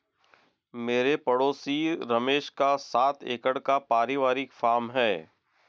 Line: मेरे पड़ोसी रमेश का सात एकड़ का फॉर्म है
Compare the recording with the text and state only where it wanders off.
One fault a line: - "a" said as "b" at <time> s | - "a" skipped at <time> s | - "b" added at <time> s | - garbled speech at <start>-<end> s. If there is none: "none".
- "परिवारिक" added at 3.8 s